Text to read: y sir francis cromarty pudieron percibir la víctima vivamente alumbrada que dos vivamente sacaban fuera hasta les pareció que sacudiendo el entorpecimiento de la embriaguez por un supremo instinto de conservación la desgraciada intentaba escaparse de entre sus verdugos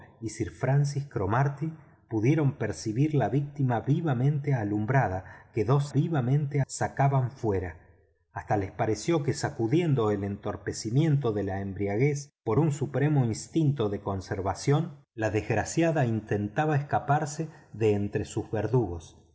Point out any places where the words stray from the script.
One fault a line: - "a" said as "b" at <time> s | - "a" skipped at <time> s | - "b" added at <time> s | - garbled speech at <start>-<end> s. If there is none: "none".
none